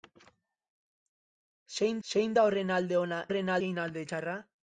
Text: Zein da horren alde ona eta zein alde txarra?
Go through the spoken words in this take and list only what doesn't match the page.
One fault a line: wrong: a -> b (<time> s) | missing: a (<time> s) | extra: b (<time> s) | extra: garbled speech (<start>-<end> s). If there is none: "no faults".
extra: zein (2.1 s)
wrong: eta -> horren (3.3 s)